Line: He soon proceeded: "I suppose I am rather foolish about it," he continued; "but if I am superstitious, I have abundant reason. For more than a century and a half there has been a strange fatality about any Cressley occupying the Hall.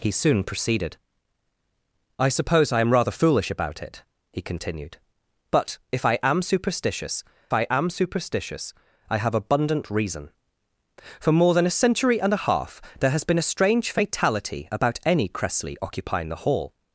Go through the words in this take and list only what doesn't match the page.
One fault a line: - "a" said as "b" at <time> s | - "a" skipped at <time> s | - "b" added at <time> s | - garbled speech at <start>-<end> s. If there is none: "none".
- "am superstitious I" added at 7.7 s